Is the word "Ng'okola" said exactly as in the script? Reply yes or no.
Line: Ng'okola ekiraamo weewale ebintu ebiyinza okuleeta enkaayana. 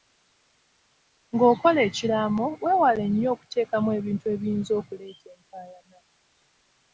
yes